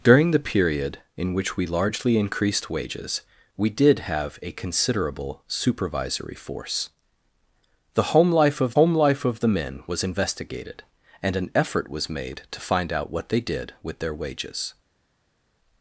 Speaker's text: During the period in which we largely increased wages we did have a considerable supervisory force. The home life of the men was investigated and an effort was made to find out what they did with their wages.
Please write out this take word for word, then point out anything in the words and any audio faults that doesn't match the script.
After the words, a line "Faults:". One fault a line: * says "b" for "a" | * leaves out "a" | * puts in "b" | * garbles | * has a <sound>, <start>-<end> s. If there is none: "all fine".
During the period in which we largely increased wages we did have a considerable supervisory force. The home life of home life of the men was investigated and an effort was made to find out what they did with their wages.
Faults:
* puts in "home life of"